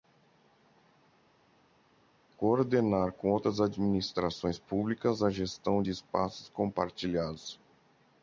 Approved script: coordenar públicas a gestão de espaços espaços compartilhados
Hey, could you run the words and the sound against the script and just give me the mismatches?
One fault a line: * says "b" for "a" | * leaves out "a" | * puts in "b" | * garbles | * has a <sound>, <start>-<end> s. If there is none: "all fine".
* puts in "com outras administrações"
* leaves out "espaços"